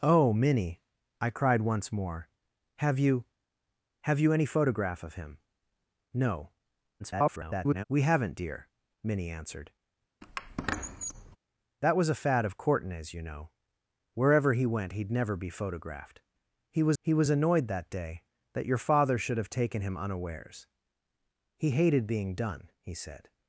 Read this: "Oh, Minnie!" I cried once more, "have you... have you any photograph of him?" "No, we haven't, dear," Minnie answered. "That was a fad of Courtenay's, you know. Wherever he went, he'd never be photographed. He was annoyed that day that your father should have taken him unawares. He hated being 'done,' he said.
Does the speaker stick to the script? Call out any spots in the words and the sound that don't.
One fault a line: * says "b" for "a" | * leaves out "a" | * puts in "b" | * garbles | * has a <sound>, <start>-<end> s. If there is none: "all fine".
* garbles
* has a squeak, 10.2-11.4 s
* puts in "he was"